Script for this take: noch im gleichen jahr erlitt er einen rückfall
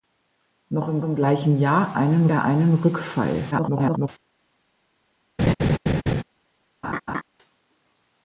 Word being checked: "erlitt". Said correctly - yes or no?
no